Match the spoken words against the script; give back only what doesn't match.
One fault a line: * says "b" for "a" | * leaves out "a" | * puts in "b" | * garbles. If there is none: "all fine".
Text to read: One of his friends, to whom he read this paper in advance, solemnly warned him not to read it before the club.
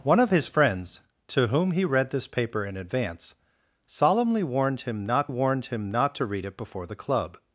* puts in "warned him not"